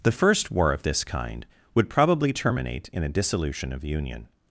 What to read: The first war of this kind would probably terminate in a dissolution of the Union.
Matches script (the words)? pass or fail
fail